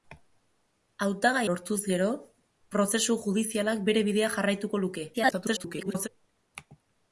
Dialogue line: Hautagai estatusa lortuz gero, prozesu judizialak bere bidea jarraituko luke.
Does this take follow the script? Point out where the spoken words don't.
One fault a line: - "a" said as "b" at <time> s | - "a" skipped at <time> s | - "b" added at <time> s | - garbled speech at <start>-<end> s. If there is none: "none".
- "estatusa" skipped at 1.4 s
- garbled speech at 5.1-6.1 s